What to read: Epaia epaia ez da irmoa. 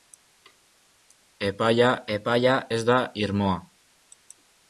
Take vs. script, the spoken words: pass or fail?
pass